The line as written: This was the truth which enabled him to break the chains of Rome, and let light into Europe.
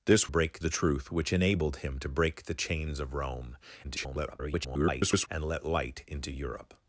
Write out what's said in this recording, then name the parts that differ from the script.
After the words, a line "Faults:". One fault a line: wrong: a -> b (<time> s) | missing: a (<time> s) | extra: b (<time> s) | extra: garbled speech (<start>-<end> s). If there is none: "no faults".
This break the truth which enabled him to break the chains of Rome, [garbled] and let light into Europe.
Faults:
wrong: was -> break (0.3 s)
extra: garbled speech (3.8-5.3 s)